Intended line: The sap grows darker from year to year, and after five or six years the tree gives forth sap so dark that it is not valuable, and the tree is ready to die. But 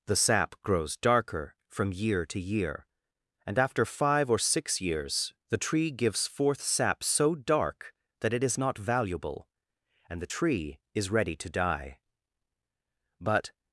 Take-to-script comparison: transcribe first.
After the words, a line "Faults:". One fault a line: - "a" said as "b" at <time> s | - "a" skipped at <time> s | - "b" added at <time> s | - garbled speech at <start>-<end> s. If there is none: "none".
The sap grows darker from year to year, and after five or six years the tree gives forth sap so dark that it is not valuable, and the tree is ready to die. But
Faults:
none